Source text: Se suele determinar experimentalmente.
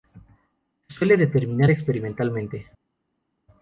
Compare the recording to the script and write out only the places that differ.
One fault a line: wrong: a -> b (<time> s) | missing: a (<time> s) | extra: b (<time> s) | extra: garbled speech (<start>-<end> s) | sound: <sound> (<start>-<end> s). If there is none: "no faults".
no faults